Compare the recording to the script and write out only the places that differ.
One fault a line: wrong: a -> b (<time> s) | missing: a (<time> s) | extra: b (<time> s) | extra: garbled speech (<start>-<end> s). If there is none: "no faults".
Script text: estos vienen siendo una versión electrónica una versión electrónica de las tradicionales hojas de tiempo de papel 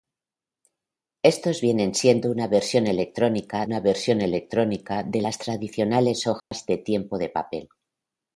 no faults